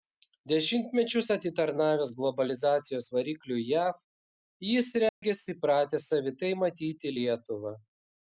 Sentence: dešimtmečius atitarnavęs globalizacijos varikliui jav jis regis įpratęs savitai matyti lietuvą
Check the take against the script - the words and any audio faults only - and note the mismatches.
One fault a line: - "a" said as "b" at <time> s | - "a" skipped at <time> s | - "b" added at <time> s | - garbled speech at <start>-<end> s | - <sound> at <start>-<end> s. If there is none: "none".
- dropout at 5.1-5.2 s